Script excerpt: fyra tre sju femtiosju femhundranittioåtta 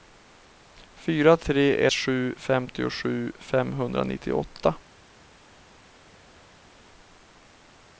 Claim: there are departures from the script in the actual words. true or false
false